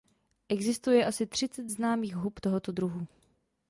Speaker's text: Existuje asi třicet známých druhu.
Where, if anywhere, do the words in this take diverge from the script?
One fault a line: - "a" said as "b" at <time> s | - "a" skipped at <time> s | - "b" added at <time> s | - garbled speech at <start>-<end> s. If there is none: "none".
- "hub tohoto" added at 2.2 s